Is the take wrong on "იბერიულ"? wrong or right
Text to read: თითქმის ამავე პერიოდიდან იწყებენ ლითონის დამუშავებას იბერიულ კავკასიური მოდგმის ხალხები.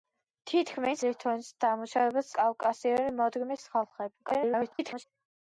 wrong